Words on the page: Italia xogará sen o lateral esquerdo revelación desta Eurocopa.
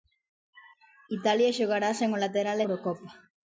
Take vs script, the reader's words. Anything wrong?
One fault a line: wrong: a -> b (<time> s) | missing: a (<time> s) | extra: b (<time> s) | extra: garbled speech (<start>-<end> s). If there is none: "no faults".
missing: esquerdo revelación desta (2.6 s)